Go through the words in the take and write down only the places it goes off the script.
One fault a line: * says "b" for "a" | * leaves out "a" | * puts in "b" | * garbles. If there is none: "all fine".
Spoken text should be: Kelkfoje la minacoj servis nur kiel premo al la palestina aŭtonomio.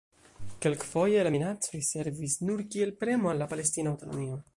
all fine